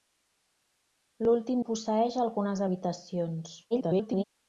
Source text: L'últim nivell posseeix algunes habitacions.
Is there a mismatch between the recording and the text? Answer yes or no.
yes